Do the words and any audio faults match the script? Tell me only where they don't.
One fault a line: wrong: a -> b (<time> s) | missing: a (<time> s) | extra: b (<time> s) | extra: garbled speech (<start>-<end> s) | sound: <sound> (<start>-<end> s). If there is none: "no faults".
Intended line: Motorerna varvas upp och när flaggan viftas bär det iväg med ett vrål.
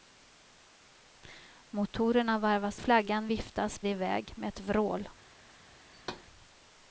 missing: upp och när (2.8 s)
missing: bär (3.8 s)
sound: thud (5.9-6.3 s)